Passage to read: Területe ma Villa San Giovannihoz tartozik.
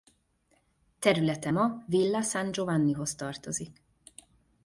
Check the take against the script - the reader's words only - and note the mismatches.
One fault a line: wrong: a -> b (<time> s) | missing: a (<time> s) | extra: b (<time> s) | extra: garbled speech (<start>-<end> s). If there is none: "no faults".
no faults